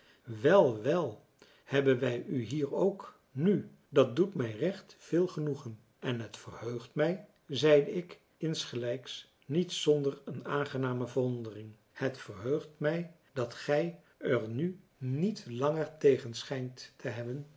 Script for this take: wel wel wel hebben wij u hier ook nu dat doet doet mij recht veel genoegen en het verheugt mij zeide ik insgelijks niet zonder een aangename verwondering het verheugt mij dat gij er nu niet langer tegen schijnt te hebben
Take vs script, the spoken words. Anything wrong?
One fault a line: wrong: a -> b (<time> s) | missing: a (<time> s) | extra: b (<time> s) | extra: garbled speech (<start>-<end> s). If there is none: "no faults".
missing: wel (1.2 s)
missing: doet (4.3 s)